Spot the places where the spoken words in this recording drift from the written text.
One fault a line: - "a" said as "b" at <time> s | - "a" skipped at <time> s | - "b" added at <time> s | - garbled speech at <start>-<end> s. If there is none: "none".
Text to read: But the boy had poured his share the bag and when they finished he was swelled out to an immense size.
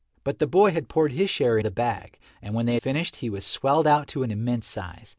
none